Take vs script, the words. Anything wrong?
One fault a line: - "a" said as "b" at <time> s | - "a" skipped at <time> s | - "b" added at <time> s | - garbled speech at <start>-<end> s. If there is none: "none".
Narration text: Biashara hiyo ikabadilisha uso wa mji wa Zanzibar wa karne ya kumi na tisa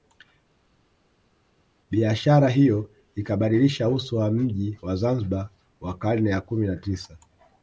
none